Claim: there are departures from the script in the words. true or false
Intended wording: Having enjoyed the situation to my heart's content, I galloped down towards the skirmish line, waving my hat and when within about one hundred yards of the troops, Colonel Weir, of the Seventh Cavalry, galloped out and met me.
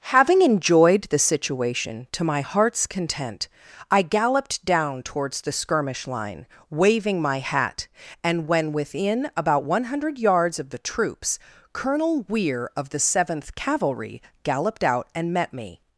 false